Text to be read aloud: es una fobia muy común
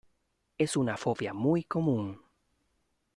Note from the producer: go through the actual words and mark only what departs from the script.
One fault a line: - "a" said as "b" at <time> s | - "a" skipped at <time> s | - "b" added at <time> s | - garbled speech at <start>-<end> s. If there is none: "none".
none